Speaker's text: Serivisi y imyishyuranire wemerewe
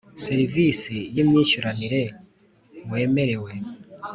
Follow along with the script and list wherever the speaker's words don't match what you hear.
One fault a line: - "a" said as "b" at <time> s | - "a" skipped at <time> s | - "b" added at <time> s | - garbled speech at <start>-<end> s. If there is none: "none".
none